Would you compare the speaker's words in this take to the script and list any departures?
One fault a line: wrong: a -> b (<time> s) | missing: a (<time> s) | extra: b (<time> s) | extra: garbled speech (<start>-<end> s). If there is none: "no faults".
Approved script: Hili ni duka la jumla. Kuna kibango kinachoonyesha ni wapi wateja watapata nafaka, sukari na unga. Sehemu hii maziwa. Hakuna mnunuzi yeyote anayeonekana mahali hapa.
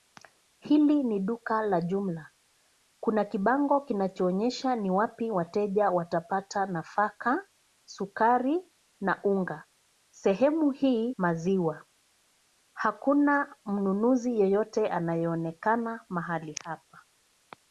no faults